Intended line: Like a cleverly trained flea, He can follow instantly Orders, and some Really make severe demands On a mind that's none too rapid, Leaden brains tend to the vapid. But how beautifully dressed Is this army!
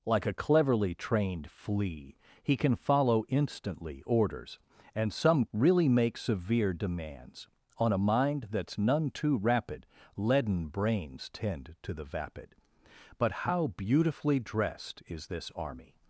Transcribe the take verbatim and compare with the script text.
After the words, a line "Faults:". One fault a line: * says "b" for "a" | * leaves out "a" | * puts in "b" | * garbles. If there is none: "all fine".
Like a cleverly trained flea, He can follow instantly Orders, and some Really make severe demands On a mind that's none too rapid, Leaden brains tend to the vapid. But how beautifully dressed Is this army!
Faults:
all fine